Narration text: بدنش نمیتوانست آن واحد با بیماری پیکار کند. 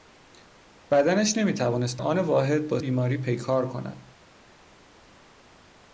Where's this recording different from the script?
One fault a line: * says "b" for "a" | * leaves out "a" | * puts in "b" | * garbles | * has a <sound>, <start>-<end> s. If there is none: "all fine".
all fine